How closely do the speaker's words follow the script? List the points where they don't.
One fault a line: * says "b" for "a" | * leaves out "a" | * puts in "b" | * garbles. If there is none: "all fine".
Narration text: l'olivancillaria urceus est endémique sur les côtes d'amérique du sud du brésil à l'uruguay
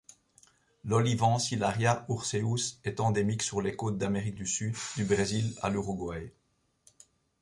all fine